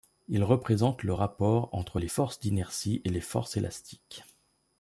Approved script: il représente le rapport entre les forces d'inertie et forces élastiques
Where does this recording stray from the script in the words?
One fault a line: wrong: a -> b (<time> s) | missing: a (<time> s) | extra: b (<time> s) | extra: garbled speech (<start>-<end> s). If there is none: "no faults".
extra: les (3.1 s)